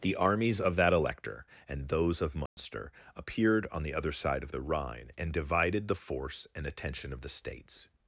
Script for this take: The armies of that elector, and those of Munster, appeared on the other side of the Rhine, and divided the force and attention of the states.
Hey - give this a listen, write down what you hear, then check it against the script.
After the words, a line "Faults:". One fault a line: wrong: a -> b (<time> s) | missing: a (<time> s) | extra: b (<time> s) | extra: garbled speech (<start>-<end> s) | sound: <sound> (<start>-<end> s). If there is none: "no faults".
The armies of that elector, and those of Munster, appeared on the other side of the Rhine, and divided the force and attention of the states.
Faults:
sound: dropout (2.5-2.6 s)